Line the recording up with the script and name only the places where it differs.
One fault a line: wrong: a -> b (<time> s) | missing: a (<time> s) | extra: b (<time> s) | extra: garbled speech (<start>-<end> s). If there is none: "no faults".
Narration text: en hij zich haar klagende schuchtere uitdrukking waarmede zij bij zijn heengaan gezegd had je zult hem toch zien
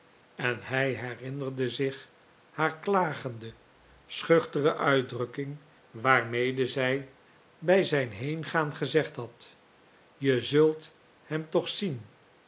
extra: herinnerde (0.9 s)